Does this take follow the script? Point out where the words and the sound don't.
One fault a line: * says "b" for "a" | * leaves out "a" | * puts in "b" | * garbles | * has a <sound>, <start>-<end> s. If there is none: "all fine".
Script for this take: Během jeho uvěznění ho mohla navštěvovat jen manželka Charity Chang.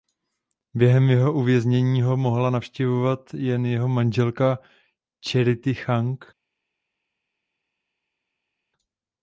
* puts in "jeho"